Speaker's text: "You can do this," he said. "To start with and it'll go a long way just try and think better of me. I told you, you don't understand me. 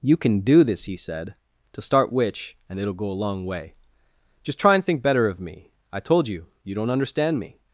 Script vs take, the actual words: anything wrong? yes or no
yes